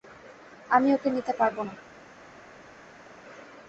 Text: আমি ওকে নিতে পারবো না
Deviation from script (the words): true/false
false